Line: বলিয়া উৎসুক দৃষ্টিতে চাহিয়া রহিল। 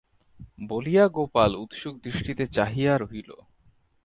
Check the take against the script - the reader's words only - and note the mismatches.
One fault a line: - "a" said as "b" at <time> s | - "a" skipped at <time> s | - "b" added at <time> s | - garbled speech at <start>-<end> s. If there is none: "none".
- "গোপাল" added at 1.1 s